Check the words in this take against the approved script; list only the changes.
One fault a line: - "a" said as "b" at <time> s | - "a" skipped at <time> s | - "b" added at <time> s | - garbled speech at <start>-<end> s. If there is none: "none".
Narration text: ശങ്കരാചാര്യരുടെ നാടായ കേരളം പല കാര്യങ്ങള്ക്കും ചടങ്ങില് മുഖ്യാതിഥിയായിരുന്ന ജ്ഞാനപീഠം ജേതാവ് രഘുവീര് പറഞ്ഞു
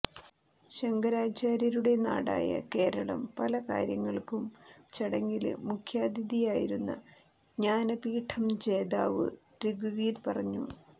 none